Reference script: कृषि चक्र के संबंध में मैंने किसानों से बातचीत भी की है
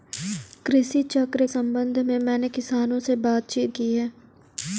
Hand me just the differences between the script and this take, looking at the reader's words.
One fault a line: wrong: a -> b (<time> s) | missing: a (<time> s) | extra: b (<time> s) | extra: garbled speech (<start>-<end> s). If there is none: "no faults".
missing: के (1.5 s)
missing: भी (3.7 s)